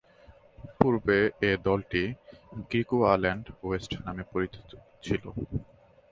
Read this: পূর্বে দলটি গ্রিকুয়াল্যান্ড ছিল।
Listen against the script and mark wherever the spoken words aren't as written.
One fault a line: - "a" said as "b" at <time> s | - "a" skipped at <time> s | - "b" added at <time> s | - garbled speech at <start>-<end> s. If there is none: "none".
- "এ" added at 1.4 s
- "ওয়েস্ট নামে পরিচিত" added at 3.6 s